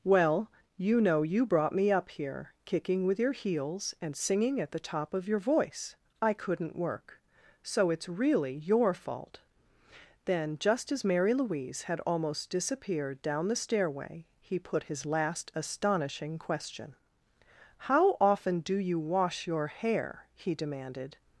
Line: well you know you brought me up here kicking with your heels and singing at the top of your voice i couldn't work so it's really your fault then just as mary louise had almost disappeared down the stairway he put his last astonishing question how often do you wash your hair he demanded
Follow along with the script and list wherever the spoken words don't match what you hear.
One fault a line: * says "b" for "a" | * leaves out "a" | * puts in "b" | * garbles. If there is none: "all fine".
all fine